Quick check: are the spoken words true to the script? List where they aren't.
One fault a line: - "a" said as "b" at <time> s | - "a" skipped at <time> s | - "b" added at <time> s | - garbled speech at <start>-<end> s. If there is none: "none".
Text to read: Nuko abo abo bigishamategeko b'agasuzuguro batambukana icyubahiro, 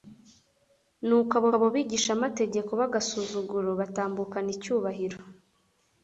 none